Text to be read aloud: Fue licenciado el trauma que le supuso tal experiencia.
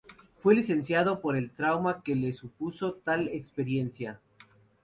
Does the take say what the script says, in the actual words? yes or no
no